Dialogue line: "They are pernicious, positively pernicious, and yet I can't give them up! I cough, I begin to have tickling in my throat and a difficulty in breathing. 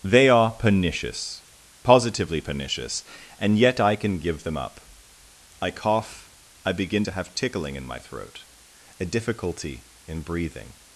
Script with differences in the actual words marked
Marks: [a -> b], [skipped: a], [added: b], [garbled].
"They are pernicious, positively pernicious, and yet I [can't -> can] give them up! I cough, I begin to have tickling in my throat [skipped: and] a difficulty in breathing.